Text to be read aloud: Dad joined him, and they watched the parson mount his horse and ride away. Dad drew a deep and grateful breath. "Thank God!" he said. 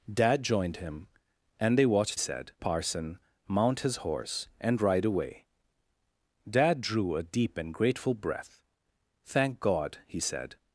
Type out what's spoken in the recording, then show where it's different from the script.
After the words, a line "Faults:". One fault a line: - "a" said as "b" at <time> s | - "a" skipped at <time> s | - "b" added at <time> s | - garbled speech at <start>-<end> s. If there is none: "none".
Dad joined him, and they watched said parson mount his horse and ride away. Dad drew a deep and grateful breath. "Thank God!" he said.
Faults:
- "the" said as "said" at 2.2 s